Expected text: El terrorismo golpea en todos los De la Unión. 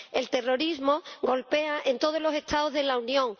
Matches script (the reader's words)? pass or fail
fail